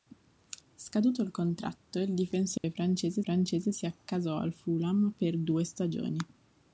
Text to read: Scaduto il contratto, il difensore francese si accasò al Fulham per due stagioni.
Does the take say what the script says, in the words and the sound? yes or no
no